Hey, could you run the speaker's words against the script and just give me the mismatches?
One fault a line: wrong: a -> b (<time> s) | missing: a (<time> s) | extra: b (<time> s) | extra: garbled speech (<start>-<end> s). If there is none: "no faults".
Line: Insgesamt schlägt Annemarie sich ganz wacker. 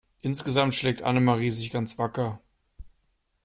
no faults